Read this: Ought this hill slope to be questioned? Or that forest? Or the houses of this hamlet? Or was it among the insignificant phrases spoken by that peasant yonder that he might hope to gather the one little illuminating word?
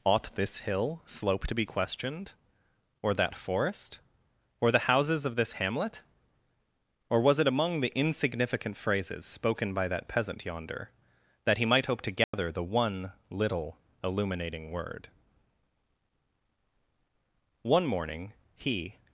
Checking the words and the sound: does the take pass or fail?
fail